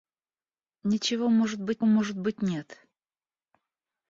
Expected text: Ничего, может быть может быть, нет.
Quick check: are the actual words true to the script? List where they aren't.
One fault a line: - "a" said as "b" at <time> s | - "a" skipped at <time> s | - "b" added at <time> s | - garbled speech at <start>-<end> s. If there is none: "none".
none